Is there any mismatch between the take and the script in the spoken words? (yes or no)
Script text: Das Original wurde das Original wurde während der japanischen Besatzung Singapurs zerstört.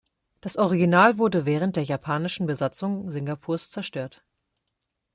yes